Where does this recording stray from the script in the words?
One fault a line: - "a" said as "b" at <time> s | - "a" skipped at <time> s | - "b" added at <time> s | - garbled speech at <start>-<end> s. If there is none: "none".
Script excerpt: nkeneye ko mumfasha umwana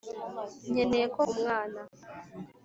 - "mumfasha" skipped at 1.2 s